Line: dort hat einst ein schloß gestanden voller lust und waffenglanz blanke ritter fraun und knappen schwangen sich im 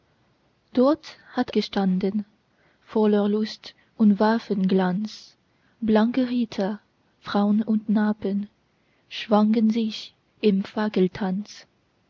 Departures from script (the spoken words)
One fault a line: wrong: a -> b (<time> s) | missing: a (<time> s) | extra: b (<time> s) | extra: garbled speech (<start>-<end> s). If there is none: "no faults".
missing: einst ein schloß (1.5 s)